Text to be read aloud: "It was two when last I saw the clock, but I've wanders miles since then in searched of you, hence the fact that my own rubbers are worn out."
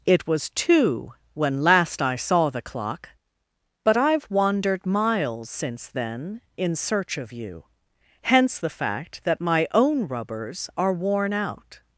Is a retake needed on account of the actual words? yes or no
yes